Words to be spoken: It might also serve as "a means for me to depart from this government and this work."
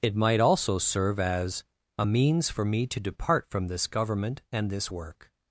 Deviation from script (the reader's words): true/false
false